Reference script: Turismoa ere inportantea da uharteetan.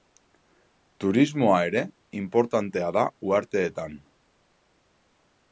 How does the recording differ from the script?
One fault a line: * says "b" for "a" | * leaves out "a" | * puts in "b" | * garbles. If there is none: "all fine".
all fine